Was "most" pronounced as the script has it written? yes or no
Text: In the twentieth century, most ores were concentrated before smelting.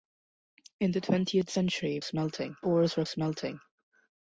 no